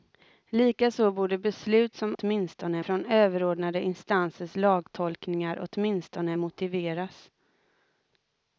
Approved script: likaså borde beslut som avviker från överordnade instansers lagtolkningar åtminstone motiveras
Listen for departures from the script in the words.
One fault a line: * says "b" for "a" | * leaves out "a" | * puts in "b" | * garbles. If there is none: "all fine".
* says "åtminstone" for "avviker"